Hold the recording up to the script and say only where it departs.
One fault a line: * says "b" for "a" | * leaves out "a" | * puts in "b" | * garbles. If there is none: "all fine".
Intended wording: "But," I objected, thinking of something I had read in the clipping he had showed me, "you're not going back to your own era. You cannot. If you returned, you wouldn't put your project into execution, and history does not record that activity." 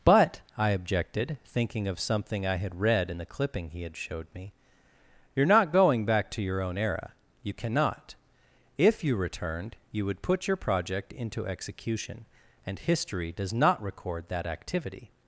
* says "would" for "wouldn't"